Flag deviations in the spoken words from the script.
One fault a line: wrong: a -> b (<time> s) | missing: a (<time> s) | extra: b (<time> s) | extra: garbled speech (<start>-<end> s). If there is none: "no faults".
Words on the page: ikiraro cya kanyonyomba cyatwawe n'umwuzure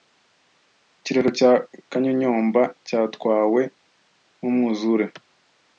no faults